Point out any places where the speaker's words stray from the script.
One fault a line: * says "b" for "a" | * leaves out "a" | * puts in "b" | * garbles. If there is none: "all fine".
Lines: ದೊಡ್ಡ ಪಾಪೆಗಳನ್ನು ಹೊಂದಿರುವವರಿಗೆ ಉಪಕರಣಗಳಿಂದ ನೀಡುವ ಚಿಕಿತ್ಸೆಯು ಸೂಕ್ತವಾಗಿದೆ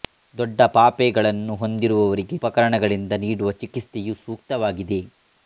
all fine